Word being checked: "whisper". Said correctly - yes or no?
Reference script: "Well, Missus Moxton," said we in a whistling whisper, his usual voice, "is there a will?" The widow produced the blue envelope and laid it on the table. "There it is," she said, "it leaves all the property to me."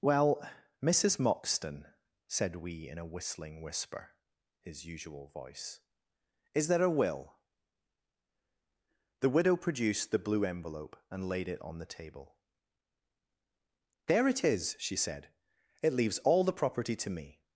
yes